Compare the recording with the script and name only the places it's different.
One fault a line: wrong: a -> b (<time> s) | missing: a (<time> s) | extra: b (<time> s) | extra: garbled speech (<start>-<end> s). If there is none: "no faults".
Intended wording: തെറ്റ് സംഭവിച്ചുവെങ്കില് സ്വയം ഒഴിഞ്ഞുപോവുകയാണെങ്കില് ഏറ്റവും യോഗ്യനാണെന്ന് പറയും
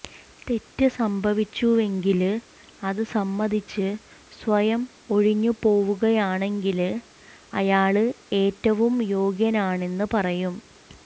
extra: അത് സമ്മതിച്ച് (2.8 s)
extra: അയാള് (7.5 s)